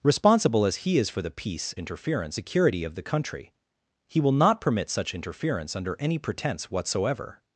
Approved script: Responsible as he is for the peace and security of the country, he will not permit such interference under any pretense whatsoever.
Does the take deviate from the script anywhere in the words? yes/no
yes